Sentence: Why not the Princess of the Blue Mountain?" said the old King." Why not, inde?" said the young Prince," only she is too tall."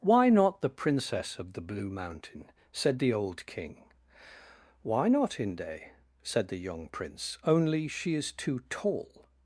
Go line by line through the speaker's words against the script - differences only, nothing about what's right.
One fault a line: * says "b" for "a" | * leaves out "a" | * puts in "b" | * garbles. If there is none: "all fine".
all fine